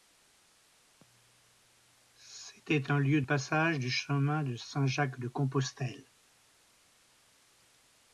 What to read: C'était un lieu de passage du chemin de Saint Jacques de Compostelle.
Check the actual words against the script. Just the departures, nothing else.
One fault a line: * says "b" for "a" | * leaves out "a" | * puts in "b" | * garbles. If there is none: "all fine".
* leaves out "de"